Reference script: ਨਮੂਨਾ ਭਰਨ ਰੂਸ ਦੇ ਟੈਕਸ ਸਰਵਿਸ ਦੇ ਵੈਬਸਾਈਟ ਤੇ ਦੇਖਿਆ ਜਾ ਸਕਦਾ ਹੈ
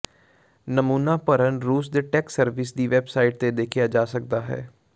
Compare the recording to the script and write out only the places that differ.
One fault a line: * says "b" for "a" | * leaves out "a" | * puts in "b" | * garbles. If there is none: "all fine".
* says "ਦੀ" for "ਦੇ"